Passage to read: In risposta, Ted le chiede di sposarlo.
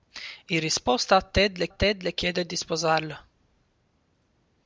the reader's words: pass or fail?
fail